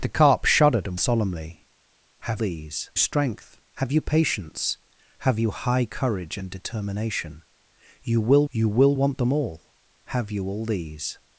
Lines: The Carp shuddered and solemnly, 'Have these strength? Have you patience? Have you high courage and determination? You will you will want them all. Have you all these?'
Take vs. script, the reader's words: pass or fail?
pass